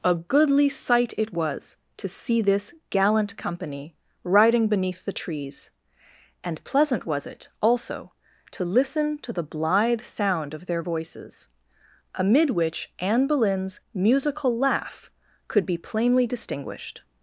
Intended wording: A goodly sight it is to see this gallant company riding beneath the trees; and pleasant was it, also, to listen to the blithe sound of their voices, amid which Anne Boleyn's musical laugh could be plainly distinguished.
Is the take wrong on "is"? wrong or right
wrong